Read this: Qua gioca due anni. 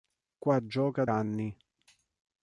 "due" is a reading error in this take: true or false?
true